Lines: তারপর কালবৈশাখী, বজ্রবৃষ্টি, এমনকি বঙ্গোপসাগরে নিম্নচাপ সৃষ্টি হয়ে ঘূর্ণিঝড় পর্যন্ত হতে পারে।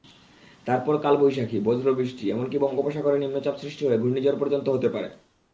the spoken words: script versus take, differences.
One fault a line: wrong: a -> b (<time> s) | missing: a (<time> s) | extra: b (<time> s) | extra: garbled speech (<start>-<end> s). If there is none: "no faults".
no faults